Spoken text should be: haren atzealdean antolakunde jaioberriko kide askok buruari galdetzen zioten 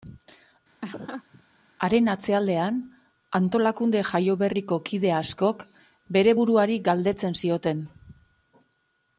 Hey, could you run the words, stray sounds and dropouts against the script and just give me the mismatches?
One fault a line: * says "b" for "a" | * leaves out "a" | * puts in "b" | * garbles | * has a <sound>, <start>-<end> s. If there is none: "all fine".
* has a laugh, 0.8-1.4 s
* puts in "bere"